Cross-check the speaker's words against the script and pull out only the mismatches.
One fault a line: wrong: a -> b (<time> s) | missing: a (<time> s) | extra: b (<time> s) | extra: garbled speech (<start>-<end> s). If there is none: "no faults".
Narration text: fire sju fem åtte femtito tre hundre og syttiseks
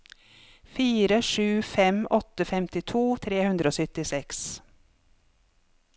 no faults